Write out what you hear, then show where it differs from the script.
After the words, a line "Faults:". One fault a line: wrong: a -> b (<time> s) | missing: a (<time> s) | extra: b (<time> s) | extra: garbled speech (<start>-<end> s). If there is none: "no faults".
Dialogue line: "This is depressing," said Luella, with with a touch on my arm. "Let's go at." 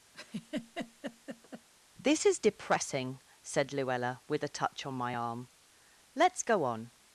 "This is depressing," said Luella, with a touch on my arm. "Let's go on."
Faults:
missing: with (4.4 s)
wrong: at -> on (6.7 s)